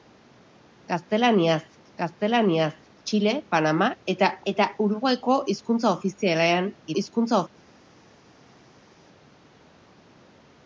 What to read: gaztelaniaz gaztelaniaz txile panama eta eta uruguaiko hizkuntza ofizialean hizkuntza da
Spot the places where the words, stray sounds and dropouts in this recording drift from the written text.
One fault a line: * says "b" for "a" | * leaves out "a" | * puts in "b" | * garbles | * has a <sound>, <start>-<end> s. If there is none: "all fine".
all fine